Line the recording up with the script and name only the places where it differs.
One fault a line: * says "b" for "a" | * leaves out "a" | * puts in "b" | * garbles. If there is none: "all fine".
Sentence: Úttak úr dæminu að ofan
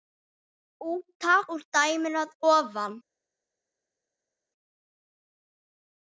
all fine